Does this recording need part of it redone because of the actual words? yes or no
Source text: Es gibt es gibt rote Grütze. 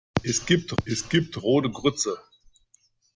no